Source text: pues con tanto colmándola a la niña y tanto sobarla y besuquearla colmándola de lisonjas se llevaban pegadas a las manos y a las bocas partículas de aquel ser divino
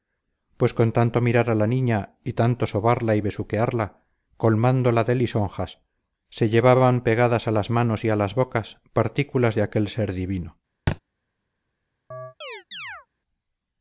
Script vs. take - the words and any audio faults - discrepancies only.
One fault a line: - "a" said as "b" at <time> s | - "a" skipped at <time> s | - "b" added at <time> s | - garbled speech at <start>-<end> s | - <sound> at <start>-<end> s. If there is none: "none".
- "colmándola" said as "mirar" at 1.2 s
- thud at 10.9-11.0 s
- chirp at 12.1-13.1 s